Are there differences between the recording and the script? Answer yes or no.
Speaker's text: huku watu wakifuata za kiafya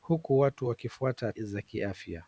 no